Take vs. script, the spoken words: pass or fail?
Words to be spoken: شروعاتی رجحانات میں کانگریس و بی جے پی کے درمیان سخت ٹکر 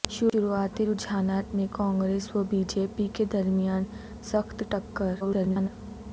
fail